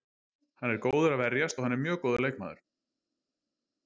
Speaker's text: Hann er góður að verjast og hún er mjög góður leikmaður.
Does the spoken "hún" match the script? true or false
false